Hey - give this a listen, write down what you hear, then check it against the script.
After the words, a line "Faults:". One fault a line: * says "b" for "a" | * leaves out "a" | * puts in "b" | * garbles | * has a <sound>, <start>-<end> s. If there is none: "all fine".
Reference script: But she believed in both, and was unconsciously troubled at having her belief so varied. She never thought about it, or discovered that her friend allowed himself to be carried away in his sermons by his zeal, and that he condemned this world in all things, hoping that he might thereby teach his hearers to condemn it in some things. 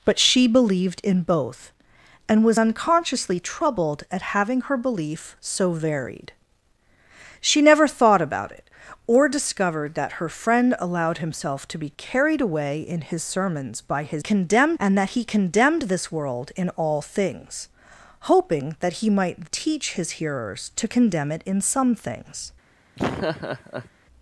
But she believed in both, and was unconsciously troubled at having her belief so varied. She never thought about it, or discovered that her friend allowed himself to be carried away in his sermons by his condemned, and that he condemned this world in all things, hoping that he might teach his hearers to condemn it in some things.
Faults:
* says "condemned" for "zeal"
* leaves out "thereby"
* has a laugh, 23.0-23.9 s